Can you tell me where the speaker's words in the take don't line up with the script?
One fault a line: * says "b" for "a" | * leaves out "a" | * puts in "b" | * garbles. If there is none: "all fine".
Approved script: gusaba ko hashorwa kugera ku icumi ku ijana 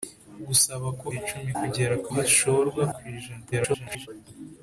* says "icumi" for "hashorwa"
* says "hashorwa" for "icumi"
* garbles